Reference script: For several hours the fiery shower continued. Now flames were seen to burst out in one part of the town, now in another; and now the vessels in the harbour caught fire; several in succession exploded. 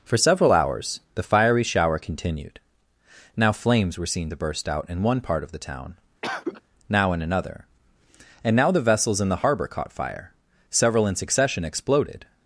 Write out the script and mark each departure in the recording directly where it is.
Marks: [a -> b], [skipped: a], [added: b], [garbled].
For several hours the fiery shower continued. Now flames were seen to burst out in one part of the town, now in another; and now the vessels in the harbour caught fire; several in succession exploded.